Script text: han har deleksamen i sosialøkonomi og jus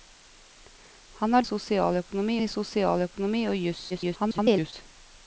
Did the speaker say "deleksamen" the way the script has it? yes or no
no